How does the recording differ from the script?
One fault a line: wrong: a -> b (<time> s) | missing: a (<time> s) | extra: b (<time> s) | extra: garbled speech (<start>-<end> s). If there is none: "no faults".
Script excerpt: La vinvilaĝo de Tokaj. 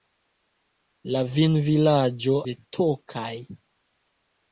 no faults